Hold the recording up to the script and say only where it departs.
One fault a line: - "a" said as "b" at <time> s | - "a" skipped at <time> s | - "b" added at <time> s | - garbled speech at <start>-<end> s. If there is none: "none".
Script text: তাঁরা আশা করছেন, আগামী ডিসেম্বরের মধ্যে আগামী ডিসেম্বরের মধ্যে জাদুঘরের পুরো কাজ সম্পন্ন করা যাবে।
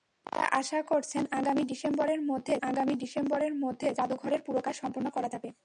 none